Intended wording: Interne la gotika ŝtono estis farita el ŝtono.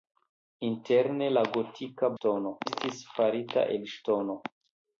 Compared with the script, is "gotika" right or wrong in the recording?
right